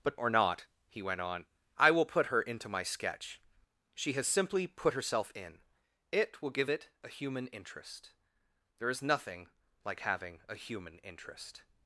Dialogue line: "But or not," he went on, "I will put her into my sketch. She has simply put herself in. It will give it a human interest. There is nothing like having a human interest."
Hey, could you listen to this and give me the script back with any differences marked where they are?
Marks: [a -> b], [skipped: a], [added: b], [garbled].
"But or not," he went on, "I will put her into my sketch. She has simply put herself in. It will give it a human interest. There is nothing like having a human interest."